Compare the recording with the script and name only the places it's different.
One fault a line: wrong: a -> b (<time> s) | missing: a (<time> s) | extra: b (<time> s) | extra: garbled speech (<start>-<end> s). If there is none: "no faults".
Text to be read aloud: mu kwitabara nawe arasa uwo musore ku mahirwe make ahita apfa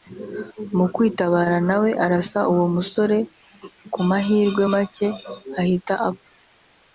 no faults